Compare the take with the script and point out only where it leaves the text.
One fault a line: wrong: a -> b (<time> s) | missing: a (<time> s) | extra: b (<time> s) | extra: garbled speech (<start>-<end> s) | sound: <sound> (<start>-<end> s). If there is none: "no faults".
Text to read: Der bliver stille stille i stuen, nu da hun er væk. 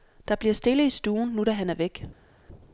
missing: stille (0.8 s)
wrong: hun -> han (1.5 s)